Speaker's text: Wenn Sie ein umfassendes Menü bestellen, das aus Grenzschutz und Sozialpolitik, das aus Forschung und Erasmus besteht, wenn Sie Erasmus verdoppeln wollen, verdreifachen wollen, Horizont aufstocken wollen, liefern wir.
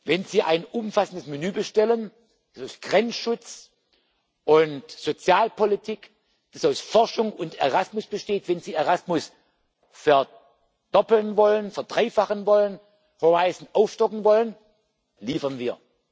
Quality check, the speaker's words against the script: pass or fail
pass